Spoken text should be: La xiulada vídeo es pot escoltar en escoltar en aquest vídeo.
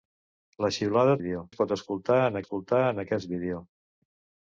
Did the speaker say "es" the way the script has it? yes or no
yes